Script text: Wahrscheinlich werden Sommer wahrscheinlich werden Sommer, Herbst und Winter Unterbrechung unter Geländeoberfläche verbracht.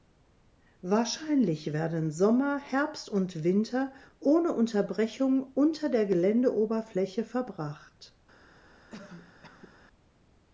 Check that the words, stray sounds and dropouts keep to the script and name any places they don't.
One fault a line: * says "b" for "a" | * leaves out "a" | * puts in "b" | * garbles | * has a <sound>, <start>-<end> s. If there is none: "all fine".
* leaves out "wahrscheinlich werden Sommer"
* puts in "ohne"
* puts in "der"
* has a cough, 8.9-9.8 s